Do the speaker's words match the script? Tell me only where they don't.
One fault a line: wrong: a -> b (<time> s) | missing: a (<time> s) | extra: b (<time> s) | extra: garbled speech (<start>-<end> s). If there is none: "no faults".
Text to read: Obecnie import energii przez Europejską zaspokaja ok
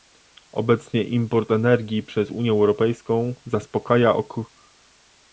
extra: Unię (2.3 s)